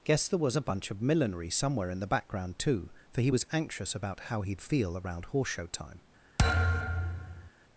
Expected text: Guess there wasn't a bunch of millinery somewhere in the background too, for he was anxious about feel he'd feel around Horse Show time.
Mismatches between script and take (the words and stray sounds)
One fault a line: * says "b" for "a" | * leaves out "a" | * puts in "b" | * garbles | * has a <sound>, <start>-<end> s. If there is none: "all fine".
* says "was" for "wasn't"
* says "how" for "feel"
* has a thud, 6.4-7.5 s